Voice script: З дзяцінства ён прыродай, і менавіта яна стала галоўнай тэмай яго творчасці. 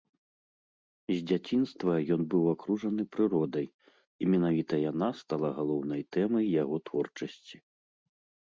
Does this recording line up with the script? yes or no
no